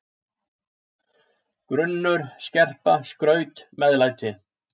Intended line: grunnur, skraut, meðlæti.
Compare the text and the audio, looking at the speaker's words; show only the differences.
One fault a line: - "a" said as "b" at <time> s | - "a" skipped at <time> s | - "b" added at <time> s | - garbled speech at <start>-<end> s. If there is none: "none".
- "skerpa" added at 2.5 s